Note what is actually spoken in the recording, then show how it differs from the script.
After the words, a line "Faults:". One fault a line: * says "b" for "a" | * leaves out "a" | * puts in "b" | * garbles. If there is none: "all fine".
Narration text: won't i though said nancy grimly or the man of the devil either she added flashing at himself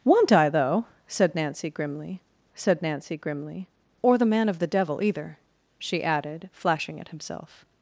won't i though said nancy grimly said nancy grimly or the man of the devil either she added flashing at himself
Faults:
* puts in "said nancy grimly"